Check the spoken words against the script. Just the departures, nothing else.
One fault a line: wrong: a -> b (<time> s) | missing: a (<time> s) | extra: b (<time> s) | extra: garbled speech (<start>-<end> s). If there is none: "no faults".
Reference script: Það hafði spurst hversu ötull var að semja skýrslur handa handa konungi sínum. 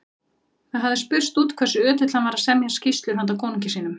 extra: út (1.4 s)
extra: hann (2.1 s)
missing: handa (3.4 s)